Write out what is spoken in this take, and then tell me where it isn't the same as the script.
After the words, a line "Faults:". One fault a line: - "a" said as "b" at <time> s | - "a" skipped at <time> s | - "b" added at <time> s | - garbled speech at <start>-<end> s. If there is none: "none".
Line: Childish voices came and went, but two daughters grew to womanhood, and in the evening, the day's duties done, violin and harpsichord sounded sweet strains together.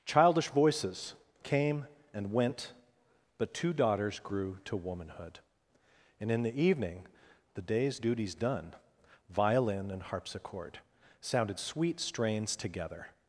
Childish voices came and went, but two daughters grew to womanhood, and in the evening, the day's duties done, violin and harpsichord sounded sweet strains together.
Faults:
none